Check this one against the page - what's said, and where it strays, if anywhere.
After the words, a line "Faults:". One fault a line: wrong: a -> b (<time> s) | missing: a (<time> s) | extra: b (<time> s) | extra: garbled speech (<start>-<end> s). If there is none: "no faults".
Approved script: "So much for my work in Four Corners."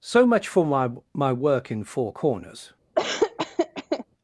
"So much for my my work in Four Corners."
Faults:
extra: my (1.1 s)